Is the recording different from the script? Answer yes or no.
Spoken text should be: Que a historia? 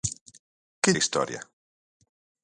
no